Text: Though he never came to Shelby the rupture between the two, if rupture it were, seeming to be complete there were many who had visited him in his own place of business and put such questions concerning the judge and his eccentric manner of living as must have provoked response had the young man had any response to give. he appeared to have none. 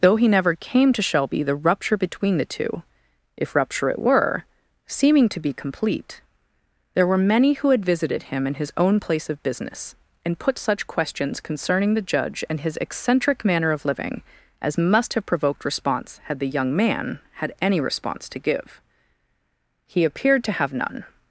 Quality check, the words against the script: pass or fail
pass